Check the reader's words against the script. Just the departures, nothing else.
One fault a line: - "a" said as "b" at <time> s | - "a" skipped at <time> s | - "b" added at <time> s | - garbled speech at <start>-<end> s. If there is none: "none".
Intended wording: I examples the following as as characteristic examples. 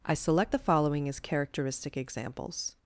- "examples" said as "select" at 0.1 s
- "as" skipped at 1.2 s